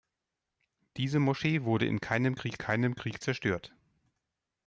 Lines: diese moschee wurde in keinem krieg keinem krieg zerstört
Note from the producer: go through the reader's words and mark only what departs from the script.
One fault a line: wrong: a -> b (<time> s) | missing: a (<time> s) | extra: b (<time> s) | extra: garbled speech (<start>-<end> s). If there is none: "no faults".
no faults